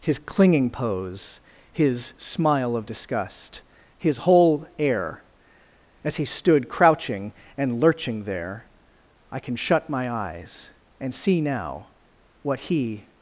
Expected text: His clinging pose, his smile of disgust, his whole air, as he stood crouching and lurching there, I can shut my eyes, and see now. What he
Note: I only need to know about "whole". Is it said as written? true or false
true